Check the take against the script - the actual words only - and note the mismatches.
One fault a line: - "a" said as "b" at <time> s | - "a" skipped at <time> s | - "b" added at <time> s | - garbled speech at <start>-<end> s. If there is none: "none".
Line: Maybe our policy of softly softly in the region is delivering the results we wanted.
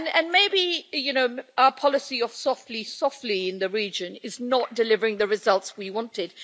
- "not" added at 4.4 s